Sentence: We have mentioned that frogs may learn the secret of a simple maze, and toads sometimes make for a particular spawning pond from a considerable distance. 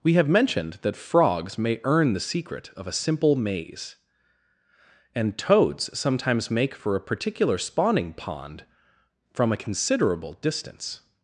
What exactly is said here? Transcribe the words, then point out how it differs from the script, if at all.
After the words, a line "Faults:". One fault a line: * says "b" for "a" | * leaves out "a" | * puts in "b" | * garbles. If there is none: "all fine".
We have mentioned that frogs may earn the secret of a simple maze, and toads sometimes make for a particular spawning pond from a considerable distance.
Faults:
* says "earn" for "learn"